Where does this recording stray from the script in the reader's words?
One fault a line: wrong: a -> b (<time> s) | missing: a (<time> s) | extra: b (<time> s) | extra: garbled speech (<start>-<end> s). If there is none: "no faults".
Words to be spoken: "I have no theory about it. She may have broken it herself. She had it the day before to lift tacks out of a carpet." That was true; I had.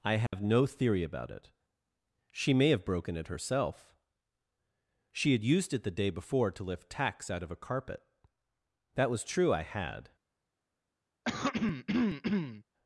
extra: used (5.4 s)